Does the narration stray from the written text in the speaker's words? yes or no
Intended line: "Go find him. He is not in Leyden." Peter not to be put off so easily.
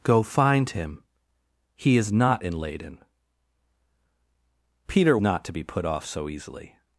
no